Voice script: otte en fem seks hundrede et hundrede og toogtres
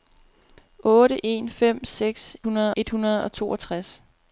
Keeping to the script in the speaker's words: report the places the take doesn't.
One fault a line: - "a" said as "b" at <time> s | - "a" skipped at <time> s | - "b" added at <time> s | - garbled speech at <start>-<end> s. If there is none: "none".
none